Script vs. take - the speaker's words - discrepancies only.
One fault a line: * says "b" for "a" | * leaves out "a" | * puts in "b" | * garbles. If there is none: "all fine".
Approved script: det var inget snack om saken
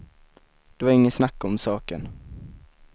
all fine